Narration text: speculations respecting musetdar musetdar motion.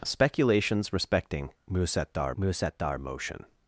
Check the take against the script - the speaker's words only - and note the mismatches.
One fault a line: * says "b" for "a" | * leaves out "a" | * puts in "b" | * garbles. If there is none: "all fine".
all fine